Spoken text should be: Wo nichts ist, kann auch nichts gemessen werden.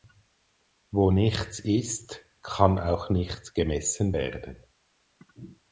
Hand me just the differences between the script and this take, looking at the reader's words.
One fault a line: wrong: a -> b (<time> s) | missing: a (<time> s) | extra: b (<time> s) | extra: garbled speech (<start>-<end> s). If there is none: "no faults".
no faults